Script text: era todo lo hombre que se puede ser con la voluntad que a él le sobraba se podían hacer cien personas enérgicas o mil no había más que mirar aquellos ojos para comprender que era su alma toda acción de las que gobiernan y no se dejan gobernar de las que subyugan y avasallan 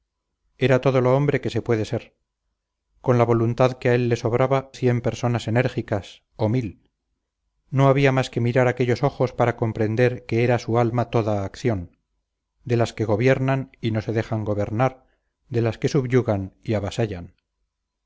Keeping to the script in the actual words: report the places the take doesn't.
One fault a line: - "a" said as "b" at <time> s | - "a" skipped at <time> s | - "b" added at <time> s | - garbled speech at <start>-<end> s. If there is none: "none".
- "se podían hacer" skipped at 4.7 s